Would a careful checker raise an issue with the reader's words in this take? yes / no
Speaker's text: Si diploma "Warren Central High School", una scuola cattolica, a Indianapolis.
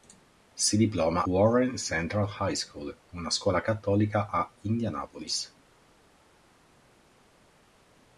no